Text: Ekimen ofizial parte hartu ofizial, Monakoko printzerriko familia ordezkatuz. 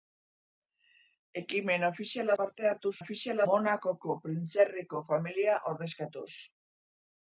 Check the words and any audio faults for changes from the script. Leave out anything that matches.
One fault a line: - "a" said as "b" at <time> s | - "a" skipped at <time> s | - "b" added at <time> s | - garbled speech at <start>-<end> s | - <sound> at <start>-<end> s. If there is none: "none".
none